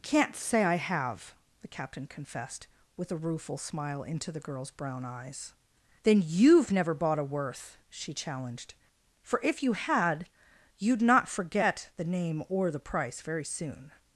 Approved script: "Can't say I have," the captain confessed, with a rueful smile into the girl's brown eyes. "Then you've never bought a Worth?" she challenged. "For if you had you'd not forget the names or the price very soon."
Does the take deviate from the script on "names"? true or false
true